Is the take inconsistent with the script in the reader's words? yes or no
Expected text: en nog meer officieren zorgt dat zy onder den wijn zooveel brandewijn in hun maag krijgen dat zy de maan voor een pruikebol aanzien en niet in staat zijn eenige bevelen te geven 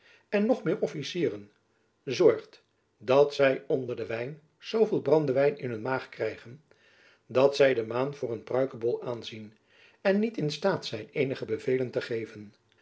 no